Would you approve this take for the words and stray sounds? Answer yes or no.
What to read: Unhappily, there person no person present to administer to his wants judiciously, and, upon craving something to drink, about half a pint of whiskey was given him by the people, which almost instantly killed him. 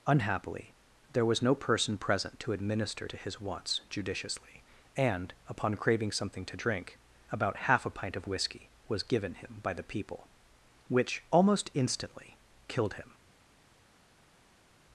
no